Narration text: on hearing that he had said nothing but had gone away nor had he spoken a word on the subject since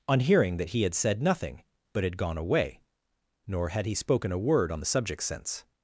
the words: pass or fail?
pass